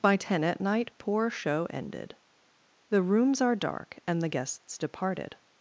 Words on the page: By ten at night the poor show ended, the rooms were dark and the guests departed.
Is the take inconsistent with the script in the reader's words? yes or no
yes